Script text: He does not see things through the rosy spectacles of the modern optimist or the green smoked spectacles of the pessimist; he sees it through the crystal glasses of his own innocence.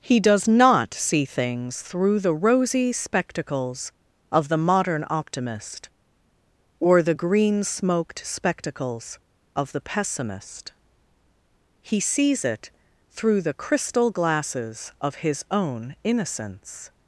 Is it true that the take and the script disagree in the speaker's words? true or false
false